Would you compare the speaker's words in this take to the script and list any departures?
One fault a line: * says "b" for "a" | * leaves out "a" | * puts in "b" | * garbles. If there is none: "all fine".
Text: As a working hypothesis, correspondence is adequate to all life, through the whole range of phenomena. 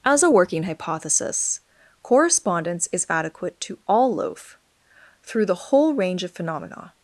* says "loaf" for "life"